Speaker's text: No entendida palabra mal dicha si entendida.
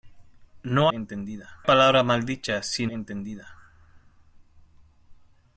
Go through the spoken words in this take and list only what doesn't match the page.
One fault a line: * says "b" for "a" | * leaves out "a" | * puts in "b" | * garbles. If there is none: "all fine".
all fine